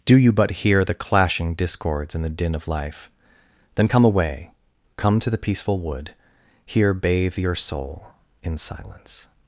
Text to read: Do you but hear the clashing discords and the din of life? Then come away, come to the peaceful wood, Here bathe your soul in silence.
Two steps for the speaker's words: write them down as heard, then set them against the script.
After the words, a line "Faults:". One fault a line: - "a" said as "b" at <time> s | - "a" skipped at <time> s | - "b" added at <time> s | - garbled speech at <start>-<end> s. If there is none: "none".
Do you but hear the clashing discords and the din of life? Then come away, come to the peaceful wood, Here bathe your soul in silence.
Faults:
none